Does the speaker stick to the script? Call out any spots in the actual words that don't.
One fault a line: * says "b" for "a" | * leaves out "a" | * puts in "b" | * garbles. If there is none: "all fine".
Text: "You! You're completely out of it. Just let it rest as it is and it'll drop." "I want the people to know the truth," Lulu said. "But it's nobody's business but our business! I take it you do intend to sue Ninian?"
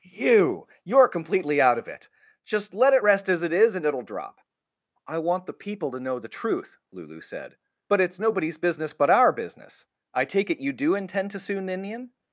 all fine